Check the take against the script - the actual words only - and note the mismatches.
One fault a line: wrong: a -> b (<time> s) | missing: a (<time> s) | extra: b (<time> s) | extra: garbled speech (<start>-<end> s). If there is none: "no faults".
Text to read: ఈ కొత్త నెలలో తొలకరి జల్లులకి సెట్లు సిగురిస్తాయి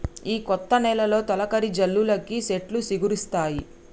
no faults